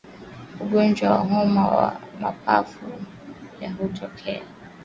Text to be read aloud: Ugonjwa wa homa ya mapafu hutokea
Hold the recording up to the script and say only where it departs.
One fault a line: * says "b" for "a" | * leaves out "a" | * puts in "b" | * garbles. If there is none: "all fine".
all fine